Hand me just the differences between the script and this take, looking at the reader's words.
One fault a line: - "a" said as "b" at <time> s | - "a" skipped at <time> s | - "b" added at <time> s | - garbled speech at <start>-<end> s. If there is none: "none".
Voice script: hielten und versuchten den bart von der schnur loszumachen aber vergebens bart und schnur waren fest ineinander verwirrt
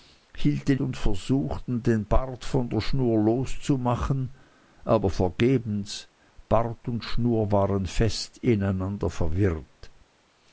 none